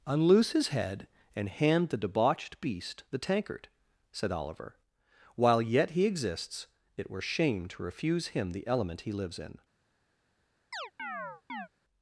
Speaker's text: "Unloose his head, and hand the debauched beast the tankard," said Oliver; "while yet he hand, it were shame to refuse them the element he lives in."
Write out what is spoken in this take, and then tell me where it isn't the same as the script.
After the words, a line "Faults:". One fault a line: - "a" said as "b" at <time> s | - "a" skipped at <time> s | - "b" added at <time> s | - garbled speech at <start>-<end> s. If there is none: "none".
"Unloose his head, and hand the debauched beast the tankard," said Oliver; "while yet he exists, it were shame to refuse him the element he lives in."
Faults:
- "hand" said as "exists" at 6.1 s
- "them" said as "him" at 8.3 s